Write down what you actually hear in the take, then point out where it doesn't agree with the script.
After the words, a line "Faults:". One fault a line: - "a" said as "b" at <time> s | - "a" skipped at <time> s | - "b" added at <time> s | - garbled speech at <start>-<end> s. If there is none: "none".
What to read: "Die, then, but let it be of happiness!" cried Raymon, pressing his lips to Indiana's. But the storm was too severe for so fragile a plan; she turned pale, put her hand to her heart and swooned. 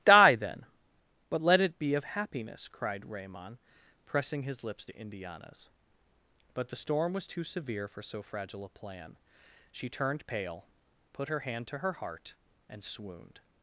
"Die, then, but let it be of happiness!" cried Raymon, pressing his lips to Indiana's. But the storm was too severe for so fragile a plan; she turned pale, put her hand to her heart and swooned.
Faults:
none